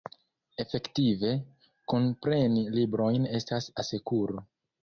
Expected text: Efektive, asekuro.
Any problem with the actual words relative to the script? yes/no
yes